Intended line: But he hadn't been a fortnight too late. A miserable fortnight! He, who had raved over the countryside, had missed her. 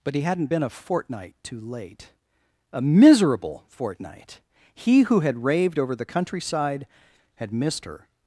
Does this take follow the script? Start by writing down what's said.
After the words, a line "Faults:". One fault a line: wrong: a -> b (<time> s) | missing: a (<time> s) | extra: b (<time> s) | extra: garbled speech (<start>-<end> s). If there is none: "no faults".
But he hadn't been a fortnight too late. A miserable fortnight! He, who had raved over the countryside, had missed her.
Faults:
no faults